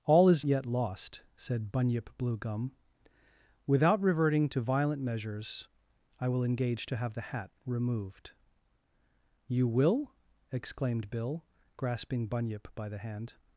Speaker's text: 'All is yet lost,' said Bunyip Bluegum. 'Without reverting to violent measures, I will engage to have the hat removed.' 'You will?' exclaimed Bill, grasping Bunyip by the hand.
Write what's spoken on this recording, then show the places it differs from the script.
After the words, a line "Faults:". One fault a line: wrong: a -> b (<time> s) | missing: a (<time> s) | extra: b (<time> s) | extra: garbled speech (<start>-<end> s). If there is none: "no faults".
'All is yet lost,' said Bunyip Bluegum. 'Without reverting to violent measures, I will engage to have the hat removed.' 'You will?' exclaimed Bill, grasping Bunyip by the hand.
Faults:
no faults